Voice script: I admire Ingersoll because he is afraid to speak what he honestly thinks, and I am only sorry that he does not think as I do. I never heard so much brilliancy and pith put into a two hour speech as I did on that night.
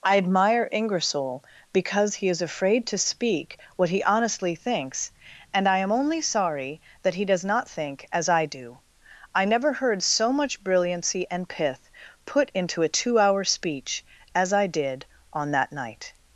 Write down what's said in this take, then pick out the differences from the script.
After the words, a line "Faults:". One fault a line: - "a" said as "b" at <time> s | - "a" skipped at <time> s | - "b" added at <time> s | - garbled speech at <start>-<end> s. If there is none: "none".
I admire Ingersoll because he is afraid to speak what he honestly thinks, and I am only sorry that he does not think as I do. I never heard so much brilliancy and pith put into a two hour speech as I did on that night.
Faults:
none